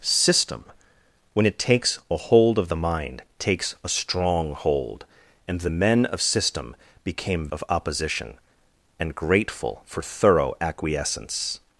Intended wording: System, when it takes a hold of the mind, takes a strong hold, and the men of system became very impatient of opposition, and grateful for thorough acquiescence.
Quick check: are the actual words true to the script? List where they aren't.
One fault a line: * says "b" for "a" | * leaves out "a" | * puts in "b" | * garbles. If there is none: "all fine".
* leaves out "very impatient"